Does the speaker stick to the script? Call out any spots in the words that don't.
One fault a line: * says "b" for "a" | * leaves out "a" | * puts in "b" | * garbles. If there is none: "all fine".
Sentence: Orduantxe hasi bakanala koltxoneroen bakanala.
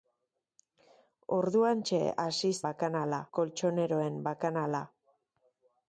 all fine